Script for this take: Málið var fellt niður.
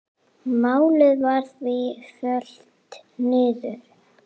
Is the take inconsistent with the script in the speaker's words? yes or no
yes